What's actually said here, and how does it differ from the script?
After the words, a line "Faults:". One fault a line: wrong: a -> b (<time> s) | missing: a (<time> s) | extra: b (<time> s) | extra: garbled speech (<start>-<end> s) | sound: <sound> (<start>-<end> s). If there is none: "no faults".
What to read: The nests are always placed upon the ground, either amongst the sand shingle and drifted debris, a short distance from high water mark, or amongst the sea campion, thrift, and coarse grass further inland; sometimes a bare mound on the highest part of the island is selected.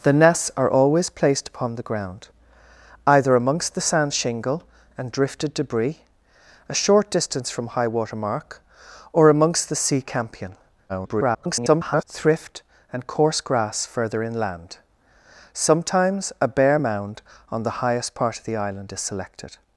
The nests are always placed upon the ground, either amongst the sand shingle and drifted debris, a short distance from high water mark, or amongst the sea campion, [garbled] thrift, and coarse grass further inland; sometimes a bare mound on the highest part of the island is selected.
Faults:
extra: garbled speech (10.9-12.0 s)